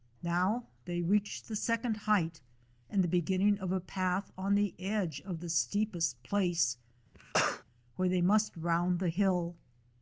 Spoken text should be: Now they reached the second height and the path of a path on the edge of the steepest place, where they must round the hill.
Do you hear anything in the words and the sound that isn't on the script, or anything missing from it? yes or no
yes